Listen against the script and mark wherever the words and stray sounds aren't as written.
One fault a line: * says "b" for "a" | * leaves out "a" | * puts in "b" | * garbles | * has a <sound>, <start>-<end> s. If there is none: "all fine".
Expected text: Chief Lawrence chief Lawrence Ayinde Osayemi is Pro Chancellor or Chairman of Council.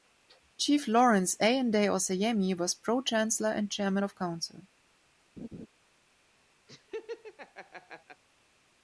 * leaves out "chief Lawrence"
* says "was" for "is"
* says "and" for "or"
* has a laugh, 5.4-5.7 s
* has a laugh, 6.7-8.2 s